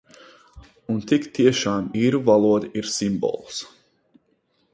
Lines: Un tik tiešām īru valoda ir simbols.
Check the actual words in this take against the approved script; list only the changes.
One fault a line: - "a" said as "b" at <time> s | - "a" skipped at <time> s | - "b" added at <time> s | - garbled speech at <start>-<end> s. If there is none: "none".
none